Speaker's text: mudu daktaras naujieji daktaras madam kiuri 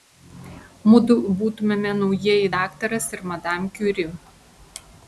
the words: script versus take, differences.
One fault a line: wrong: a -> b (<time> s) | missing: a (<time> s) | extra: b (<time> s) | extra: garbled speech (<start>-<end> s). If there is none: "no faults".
wrong: daktaras -> būtumėme (1.4 s)
extra: ir (3.2 s)